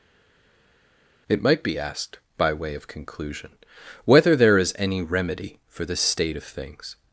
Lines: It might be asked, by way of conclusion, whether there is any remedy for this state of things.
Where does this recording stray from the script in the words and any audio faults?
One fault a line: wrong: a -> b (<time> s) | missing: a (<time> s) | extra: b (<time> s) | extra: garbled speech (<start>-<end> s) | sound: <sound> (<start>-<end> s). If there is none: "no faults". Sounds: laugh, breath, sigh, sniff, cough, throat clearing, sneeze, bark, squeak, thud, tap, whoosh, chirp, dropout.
no faults